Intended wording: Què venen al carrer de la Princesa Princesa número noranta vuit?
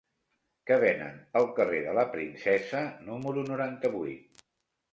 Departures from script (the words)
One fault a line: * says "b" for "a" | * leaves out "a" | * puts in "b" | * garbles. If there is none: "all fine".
* leaves out "Princesa"